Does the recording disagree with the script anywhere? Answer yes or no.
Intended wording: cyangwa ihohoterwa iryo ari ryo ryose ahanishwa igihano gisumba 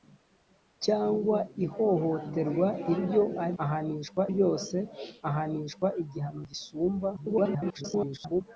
yes